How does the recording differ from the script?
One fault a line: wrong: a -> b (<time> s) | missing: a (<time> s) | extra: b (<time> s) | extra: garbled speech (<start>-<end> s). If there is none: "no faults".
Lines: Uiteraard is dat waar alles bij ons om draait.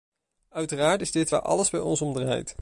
wrong: dat -> dit (1.1 s)